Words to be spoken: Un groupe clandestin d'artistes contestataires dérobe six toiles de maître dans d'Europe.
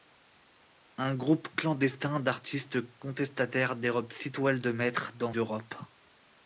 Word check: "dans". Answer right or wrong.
right